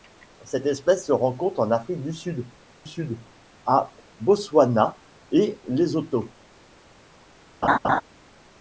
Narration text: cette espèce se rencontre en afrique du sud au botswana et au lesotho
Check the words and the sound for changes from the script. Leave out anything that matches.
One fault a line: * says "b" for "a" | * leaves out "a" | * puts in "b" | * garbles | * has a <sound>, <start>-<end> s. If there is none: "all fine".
* puts in "sud"
* leaves out "au"
* has a laugh, 7.6-8.0 s